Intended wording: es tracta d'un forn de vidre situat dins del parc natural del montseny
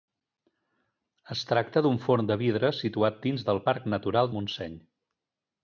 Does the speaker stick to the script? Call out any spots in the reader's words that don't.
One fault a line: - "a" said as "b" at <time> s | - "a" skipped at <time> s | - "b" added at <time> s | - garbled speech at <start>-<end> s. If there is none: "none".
- "del" skipped at 4.3 s